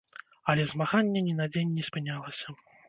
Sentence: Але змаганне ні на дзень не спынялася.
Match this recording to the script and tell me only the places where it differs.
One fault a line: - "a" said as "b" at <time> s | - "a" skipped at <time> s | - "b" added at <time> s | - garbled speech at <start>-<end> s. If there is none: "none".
none